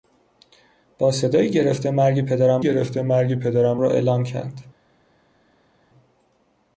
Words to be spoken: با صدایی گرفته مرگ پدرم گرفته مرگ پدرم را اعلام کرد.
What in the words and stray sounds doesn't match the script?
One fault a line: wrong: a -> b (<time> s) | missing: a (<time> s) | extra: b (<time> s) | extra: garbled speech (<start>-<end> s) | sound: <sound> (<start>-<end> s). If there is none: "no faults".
no faults